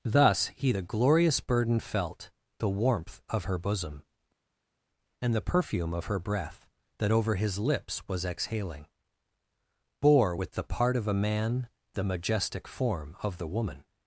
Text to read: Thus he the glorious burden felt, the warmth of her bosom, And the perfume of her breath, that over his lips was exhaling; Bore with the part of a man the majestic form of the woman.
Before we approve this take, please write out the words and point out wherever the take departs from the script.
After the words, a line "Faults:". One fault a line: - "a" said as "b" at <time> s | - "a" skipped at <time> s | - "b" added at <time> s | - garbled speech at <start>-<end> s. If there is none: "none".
Thus he the glorious burden felt, the warmth of her bosom, And the perfume of her breath, that over his lips was exhaling; Bore with the part of a man the majestic form of the woman.
Faults:
none